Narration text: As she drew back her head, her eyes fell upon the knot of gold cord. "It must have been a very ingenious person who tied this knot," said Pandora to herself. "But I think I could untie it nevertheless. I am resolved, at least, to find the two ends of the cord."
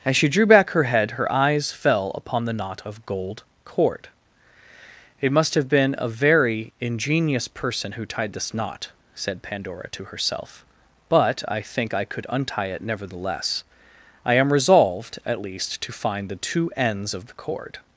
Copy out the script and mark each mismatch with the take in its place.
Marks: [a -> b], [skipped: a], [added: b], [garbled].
As she drew back her head, her eyes fell upon the knot of gold cord. "It must have been a very ingenious person who tied this knot," said Pandora to herself. "But I think I could untie it nevertheless. I am resolved, at least, to find the two ends of the cord."